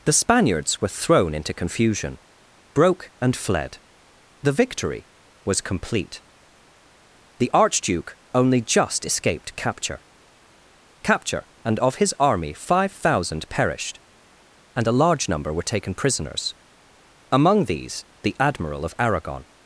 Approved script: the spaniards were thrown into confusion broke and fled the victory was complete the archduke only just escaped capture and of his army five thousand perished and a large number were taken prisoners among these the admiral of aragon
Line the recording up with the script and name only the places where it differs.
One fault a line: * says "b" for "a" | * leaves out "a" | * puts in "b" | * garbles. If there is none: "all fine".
* puts in "capture"